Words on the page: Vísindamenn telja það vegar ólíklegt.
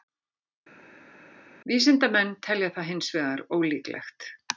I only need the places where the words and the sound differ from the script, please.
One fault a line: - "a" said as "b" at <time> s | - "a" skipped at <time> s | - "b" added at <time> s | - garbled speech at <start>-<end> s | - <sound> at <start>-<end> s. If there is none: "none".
- "hins" added at 2.9 s